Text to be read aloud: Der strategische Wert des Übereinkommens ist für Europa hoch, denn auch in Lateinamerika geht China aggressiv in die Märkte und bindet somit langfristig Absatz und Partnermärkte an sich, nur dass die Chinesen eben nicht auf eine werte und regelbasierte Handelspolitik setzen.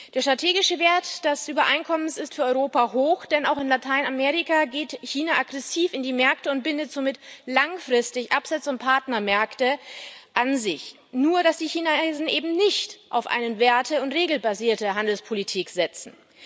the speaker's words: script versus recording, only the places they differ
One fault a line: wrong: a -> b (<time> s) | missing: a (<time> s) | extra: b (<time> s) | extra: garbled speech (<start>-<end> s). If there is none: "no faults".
no faults